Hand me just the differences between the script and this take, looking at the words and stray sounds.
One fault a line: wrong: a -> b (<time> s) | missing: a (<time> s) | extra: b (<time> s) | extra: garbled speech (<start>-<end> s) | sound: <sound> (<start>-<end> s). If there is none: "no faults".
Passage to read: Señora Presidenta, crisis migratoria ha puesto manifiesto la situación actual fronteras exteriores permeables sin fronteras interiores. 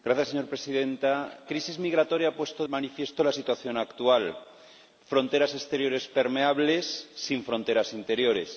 no faults